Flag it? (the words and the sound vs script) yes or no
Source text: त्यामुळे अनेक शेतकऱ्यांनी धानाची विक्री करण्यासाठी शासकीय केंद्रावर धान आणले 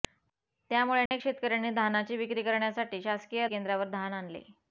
yes